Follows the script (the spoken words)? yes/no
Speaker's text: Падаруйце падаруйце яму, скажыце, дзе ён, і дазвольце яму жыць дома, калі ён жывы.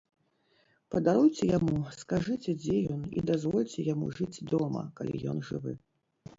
no